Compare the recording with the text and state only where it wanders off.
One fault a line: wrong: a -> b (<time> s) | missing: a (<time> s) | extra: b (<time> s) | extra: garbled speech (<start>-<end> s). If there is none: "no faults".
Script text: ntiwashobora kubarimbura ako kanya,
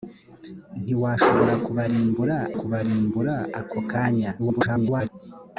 extra: kubarimbura (2.6 s)
extra: garbled speech (4.4-5.1 s)